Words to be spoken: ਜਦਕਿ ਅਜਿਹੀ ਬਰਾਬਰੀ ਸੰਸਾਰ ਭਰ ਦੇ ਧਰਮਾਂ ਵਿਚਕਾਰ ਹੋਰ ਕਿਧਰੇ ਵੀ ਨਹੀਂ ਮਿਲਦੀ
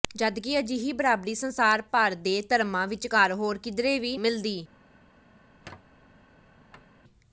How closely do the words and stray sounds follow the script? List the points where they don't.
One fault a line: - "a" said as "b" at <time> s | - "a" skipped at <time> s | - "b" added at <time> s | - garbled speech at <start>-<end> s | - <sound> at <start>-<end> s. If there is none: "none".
- "ਨਹੀਂ" skipped at 4.2 s
- squeak at 5.4-7.0 s